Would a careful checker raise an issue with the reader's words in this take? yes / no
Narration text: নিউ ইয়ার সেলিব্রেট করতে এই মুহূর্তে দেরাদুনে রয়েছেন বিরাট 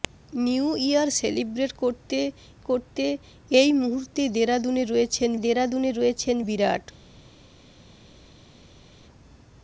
yes